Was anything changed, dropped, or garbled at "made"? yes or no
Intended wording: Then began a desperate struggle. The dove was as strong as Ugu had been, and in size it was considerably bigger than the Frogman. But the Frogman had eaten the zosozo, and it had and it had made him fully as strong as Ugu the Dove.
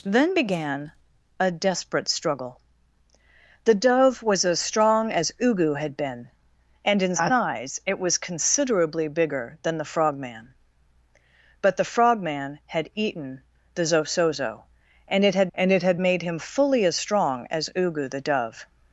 no